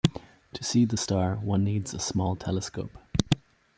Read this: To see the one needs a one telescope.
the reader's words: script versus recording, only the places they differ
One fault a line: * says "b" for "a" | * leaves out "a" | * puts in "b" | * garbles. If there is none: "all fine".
* puts in "star"
* says "small" for "one"